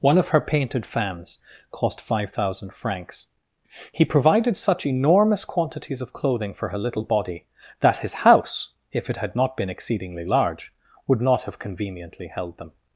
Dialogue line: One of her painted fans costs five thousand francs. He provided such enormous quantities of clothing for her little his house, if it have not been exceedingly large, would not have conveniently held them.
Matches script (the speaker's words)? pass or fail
fail